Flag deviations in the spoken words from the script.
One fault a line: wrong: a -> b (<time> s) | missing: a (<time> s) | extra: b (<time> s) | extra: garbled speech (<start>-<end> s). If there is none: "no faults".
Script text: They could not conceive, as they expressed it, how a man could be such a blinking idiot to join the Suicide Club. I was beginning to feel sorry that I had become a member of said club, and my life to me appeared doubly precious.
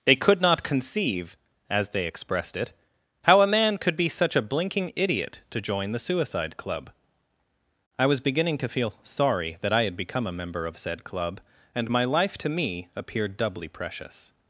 no faults